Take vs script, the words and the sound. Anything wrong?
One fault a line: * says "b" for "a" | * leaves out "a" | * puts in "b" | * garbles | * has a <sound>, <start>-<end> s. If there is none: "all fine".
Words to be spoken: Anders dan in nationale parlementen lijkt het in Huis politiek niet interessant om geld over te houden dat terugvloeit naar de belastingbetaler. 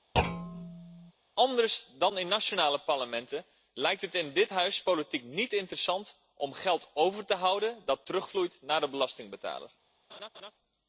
* has a thud, 0.1-1.1 s
* puts in "dit"
* has a laugh, 10.1-10.5 s